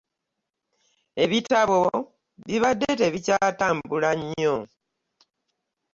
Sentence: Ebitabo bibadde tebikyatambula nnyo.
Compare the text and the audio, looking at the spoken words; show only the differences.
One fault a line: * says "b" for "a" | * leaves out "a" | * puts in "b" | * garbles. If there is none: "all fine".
all fine